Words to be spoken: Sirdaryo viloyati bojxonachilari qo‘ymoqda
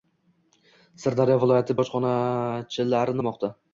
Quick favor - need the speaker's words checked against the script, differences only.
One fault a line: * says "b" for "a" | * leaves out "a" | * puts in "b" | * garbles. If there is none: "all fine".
all fine